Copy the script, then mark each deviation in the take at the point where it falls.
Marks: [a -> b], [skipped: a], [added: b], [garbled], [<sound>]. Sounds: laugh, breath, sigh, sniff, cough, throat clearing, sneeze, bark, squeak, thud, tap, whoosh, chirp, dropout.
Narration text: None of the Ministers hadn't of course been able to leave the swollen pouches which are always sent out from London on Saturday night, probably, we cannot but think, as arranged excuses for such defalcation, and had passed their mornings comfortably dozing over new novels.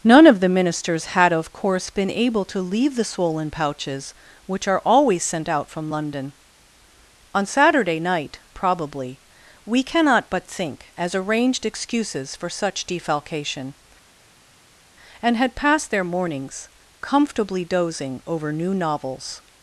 None of the Ministers [hadn't -> had] of course been able to leave the swollen pouches which are always sent out from London on Saturday night, probably, we cannot but think, as arranged excuses for such defalcation, and had passed their mornings comfortably dozing over new novels.